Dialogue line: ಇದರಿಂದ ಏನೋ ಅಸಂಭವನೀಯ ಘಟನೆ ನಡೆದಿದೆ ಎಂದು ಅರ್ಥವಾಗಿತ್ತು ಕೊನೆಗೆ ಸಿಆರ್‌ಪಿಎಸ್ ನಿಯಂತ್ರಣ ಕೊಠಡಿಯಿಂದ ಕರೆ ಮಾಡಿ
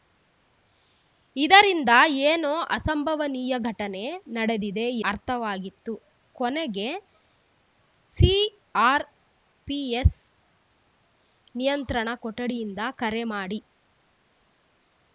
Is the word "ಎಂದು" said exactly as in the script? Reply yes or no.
no